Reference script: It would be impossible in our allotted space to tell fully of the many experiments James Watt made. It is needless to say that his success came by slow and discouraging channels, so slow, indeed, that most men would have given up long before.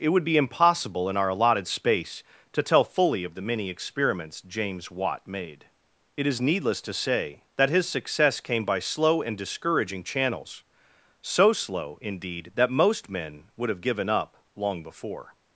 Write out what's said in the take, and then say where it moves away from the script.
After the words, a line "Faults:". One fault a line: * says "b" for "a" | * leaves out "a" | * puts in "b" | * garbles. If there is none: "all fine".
It would be impossible in our allotted space to tell fully of the many experiments James Watt made. It is needless to say that his success came by slow and discouraging channels, so slow, indeed, that most men would have given up long before.
Faults:
all fine